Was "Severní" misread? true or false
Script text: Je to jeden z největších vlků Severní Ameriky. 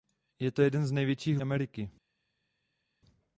true